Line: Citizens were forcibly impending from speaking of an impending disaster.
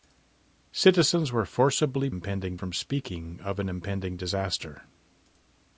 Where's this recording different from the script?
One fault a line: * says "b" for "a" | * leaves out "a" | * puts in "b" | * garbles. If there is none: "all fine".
all fine